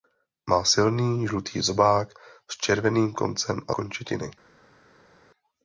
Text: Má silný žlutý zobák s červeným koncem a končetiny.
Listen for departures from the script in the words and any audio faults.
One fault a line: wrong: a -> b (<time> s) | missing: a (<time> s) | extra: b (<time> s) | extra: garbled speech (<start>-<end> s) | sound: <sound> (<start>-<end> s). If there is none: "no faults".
no faults